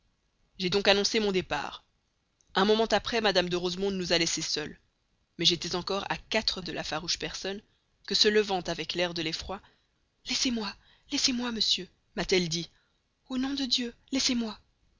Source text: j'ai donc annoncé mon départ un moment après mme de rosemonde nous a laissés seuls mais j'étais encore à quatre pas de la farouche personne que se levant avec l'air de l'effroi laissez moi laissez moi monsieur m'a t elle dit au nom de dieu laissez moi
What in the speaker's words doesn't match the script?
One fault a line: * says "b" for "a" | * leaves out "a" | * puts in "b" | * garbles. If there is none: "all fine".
* leaves out "pas"